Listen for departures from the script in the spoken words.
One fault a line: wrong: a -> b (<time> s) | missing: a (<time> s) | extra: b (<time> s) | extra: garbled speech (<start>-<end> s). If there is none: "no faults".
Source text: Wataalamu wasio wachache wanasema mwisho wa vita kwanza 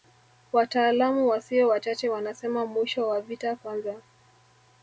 no faults